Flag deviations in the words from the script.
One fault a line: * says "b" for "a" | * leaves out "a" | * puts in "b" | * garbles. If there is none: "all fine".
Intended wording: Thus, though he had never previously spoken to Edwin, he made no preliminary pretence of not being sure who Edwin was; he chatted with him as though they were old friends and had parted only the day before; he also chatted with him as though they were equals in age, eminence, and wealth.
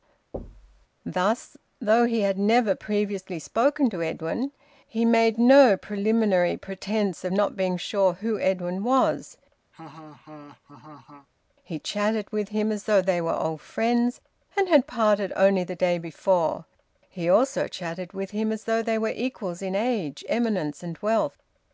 all fine